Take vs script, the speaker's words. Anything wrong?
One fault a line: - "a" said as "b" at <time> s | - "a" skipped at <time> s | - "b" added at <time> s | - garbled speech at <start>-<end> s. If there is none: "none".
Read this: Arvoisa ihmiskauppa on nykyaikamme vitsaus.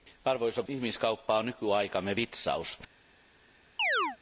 none